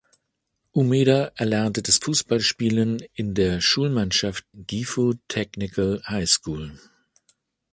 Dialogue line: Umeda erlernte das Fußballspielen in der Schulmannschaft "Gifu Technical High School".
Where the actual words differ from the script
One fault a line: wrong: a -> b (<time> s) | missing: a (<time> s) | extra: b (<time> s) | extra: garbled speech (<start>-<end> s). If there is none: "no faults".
no faults